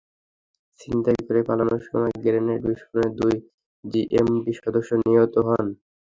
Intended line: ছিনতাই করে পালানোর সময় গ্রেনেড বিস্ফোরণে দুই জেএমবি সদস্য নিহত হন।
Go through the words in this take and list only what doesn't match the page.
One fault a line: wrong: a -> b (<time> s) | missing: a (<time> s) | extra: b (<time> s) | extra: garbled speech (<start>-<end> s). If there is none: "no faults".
no faults